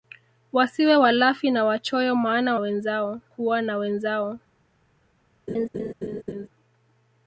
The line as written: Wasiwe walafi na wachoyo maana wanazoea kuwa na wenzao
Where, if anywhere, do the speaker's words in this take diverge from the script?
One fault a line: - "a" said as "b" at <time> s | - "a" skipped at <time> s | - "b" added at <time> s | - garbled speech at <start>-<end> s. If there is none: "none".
- "wanazoea" said as "wenzao" at 2.6 s